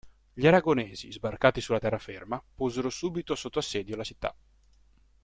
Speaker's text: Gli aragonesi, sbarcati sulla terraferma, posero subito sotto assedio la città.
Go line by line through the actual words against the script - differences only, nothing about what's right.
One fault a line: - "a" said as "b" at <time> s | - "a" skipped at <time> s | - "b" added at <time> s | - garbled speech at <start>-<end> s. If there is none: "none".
none